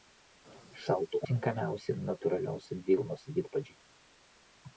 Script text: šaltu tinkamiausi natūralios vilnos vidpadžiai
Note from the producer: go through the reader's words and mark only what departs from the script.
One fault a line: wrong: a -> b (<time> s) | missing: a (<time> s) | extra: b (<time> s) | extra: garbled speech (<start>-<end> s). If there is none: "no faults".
no faults